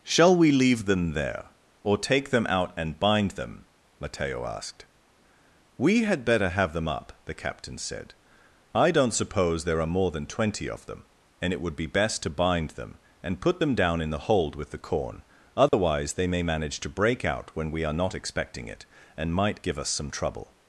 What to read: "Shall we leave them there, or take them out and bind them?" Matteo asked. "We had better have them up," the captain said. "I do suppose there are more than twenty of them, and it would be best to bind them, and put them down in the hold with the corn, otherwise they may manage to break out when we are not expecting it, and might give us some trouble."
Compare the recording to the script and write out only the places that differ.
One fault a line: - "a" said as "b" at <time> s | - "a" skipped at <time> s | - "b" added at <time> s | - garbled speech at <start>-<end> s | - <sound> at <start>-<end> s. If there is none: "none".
- "do" said as "don't" at 8.9 s
- dropout at 15.7-15.7 s